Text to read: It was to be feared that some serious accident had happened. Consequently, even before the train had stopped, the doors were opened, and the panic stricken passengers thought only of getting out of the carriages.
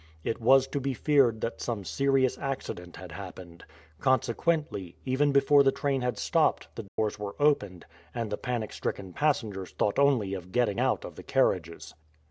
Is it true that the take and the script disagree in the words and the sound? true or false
true